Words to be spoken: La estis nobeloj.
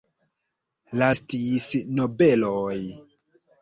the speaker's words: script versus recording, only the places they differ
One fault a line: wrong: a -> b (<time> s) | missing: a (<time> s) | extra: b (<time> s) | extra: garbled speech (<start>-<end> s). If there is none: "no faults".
no faults